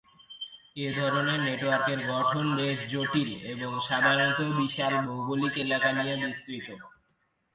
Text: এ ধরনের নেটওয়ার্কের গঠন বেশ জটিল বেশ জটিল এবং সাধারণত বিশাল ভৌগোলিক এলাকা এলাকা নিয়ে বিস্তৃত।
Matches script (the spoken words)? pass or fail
fail